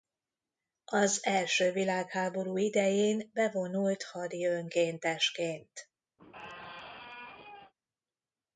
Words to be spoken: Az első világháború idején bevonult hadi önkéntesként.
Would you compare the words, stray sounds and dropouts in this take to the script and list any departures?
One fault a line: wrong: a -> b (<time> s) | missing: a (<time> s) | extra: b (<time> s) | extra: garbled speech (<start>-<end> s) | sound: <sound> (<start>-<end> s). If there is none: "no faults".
sound: squeak (6.2-7.7 s)